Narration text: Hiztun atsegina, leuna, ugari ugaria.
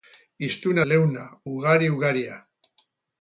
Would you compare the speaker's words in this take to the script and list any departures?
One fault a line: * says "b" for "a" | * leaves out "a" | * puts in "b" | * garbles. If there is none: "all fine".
* leaves out "atsegina"